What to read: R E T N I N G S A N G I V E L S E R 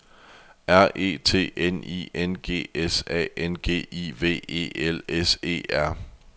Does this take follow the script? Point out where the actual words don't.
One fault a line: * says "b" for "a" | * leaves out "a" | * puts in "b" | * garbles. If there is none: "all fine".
all fine